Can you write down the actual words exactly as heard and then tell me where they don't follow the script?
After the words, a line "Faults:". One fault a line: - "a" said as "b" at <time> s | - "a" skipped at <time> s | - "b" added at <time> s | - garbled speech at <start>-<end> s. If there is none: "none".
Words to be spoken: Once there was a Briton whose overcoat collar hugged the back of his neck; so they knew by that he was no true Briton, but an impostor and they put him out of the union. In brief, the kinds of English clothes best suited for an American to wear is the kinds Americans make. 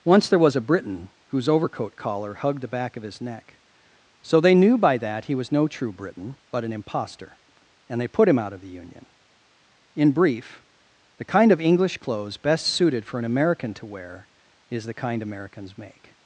Once there was a Briton whose overcoat collar hugged the back of his neck; so they knew by that he was no true Briton, but an impostor and they put him out of the union. In brief, the kind of English clothes best suited for an American to wear is the kind Americans make.
Faults:
- "kinds" said as "kind" at 11.2 s
- "kinds" said as "kind" at 14.9 s